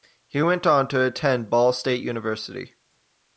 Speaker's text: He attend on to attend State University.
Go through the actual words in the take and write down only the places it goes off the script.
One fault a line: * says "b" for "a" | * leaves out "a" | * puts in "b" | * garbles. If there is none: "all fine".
* says "went" for "attend"
* puts in "Ball"